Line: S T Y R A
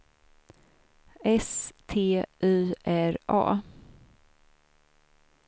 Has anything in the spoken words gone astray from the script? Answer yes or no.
no